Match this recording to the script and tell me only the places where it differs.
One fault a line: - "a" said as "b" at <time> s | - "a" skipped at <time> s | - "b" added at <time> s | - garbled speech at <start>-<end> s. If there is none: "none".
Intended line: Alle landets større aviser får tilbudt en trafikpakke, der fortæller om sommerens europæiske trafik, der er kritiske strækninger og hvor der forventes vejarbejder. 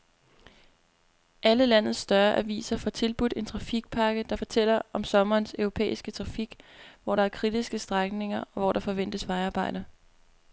- "hvor" added at 7.0 s